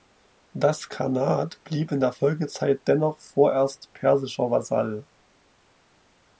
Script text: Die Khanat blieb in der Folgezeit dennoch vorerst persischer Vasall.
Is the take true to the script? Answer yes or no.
no